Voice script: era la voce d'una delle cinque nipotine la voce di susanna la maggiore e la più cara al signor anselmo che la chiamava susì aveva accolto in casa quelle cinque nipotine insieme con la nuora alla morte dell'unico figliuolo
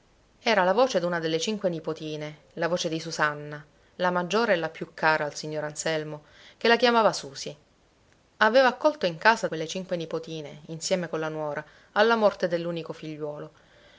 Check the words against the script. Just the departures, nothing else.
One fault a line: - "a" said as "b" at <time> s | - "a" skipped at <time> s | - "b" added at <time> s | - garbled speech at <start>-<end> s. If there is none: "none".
none